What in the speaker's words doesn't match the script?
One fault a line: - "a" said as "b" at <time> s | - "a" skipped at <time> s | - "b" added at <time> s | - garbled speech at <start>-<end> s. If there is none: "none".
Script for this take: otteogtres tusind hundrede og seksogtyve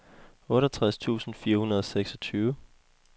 - "fire" added at 1.4 s